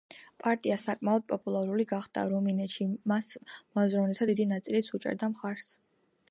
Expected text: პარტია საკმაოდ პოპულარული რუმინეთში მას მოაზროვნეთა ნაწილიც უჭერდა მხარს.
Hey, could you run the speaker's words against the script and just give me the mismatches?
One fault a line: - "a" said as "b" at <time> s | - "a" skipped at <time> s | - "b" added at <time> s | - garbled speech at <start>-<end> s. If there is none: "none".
- "გახდა" added at 1.9 s
- "დიდი" added at 4.3 s